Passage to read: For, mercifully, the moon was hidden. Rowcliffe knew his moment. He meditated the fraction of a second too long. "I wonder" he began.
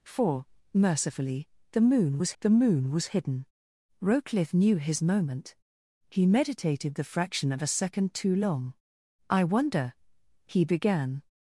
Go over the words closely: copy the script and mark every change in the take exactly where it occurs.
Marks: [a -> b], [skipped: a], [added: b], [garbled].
For, mercifully, the moon was [added: the moon was] hidden. Rowcliffe knew his moment. He meditated the fraction of a second too long. "I wonder" he began.